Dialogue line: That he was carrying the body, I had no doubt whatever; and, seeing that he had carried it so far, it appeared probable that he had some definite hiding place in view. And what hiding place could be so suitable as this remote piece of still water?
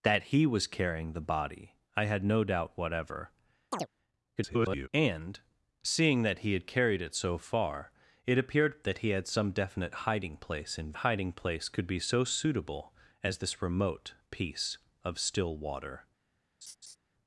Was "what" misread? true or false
true